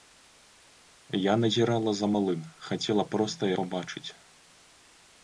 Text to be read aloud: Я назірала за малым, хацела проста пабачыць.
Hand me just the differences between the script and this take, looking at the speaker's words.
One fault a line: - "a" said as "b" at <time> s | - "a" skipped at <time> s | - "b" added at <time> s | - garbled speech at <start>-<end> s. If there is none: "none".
none